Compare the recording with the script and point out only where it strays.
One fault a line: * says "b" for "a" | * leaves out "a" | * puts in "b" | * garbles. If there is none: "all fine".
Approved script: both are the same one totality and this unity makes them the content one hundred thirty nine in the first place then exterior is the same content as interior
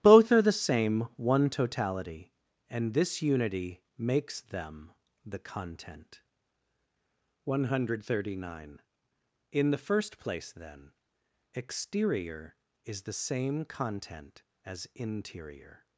all fine